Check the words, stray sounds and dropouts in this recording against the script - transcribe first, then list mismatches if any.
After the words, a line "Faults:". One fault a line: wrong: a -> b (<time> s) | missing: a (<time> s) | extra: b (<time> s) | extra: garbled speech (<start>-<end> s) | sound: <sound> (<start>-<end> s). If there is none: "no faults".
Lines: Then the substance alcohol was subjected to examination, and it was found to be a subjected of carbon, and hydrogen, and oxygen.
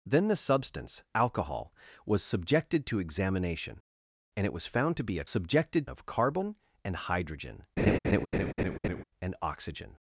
Then the substance alcohol was subjected to examination, and it was found to be a subjected of carbon, and hydrogen, and oxygen.
Faults:
sound: laugh (7.8-9.0 s)